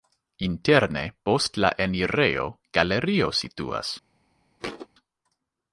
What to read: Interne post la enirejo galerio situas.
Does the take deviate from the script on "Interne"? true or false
false